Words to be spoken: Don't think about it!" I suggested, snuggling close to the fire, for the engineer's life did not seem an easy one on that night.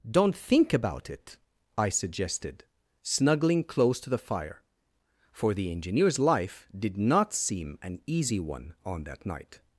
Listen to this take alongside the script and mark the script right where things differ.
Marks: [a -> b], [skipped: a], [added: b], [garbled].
Don't think about it!" I suggested, snuggling close to the fire, for the engineer's life did not seem an easy one on that night.